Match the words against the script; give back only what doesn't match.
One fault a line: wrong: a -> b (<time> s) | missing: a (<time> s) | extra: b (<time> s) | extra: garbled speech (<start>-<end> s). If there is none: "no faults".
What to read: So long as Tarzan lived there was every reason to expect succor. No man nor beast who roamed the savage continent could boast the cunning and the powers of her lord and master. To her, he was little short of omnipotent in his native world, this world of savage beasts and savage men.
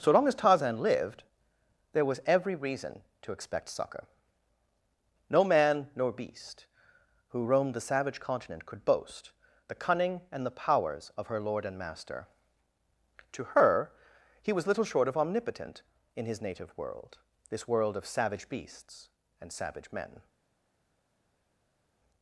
no faults